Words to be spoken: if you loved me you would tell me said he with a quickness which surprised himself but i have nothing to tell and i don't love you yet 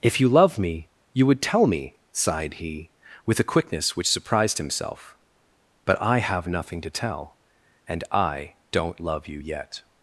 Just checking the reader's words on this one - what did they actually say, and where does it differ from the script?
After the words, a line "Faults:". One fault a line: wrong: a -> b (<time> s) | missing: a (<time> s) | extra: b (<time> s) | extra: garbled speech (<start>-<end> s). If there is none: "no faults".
if you love me you would tell me sighed he with a quickness which surprised himself but i have nothing to tell and i don't love you yet
Faults:
wrong: loved -> love (0.3 s)
wrong: said -> sighed (2.1 s)